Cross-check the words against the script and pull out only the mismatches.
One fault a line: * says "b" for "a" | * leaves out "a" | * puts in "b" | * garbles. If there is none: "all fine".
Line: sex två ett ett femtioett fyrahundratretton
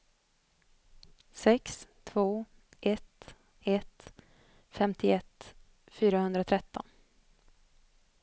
all fine